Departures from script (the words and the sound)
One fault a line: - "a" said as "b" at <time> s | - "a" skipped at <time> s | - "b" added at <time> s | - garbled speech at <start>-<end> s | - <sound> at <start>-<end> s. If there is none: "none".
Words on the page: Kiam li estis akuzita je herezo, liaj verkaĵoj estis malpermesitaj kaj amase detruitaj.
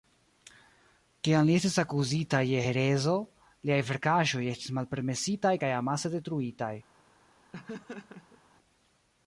- laugh at 7.5-8.4 s